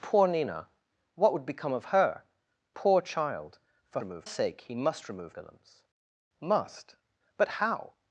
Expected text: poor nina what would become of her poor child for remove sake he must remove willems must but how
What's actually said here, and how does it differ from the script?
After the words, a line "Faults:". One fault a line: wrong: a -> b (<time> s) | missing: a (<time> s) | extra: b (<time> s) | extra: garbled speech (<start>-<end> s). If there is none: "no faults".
poor nina what would become of her poor child for remove sake he must remove willems must but how
Faults:
no faults